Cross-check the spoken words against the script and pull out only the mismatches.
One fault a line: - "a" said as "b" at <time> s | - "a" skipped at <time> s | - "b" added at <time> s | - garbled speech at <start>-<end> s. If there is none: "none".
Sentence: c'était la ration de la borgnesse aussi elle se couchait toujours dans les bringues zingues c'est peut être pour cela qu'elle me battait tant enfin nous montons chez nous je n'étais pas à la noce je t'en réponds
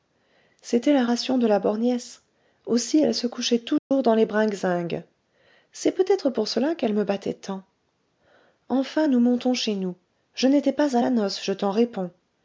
none